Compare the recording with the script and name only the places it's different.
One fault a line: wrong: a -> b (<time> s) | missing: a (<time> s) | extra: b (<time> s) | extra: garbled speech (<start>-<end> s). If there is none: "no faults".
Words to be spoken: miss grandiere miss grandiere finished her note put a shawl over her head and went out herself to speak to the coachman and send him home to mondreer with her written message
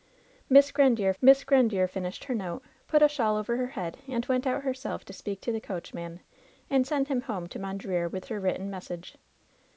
no faults